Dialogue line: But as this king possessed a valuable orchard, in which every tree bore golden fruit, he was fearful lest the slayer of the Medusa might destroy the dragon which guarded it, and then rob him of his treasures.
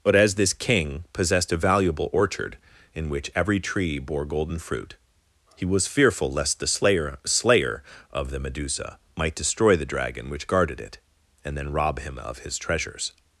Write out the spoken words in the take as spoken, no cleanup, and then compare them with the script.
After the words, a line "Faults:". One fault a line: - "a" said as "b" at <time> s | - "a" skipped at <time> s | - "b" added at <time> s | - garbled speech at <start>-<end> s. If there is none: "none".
But as this king possessed a valuable orchard, in which every tree bore golden fruit, he was fearful lest the slayer slayer of the Medusa might destroy the dragon which guarded it, and then rob him of his treasures.
Faults:
- "slayer" added at 7.2 s